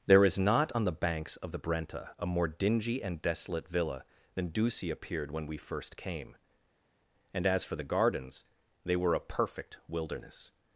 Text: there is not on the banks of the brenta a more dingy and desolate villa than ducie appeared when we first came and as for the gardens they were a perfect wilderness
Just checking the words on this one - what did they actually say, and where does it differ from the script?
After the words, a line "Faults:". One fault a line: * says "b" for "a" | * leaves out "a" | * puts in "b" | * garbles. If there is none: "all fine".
there is not on the banks of the brenta a more dingy and desolate villa than ducie appeared when we first came and as for the gardens they were a perfect wilderness
Faults:
all fine